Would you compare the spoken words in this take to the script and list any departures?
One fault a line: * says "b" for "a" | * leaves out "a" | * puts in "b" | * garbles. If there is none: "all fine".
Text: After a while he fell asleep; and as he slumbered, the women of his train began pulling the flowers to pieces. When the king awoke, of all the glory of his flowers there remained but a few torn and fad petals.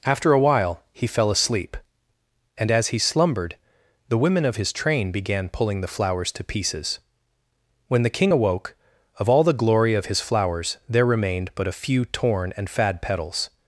all fine